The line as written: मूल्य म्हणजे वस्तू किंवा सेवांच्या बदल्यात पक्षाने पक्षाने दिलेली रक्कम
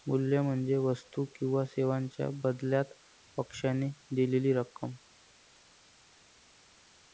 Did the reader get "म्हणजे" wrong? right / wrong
right